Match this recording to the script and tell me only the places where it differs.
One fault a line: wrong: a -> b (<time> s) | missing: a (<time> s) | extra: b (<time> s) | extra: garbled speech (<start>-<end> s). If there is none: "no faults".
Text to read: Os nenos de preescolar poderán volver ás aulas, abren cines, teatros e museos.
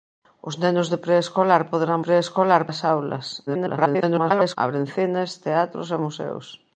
wrong: volver -> preescolar (2.1 s)
extra: garbled speech (3.5-4.6 s)